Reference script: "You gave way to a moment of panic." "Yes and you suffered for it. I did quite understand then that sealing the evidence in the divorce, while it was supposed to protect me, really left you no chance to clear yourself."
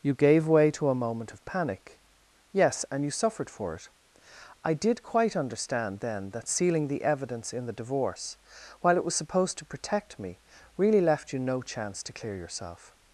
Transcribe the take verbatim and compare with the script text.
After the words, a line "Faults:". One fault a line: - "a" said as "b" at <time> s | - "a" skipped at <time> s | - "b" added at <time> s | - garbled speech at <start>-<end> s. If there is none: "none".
"You gave way to a moment of panic." "Yes and you suffered for it. I did quite understand then that sealing the evidence in the divorce, while it was supposed to protect me, really left you no chance to clear yourself."
Faults:
none